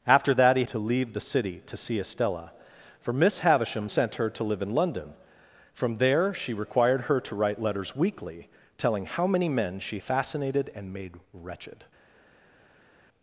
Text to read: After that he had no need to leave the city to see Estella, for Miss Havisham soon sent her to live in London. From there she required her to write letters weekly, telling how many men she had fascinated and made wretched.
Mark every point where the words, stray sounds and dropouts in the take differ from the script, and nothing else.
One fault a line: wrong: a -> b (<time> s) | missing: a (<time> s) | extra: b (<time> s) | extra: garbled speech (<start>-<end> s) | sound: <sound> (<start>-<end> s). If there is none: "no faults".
missing: had no need (0.6 s)
missing: soon (3.9 s)
missing: had (10.0 s)